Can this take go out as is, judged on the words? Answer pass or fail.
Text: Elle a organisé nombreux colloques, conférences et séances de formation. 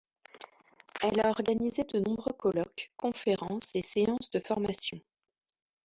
fail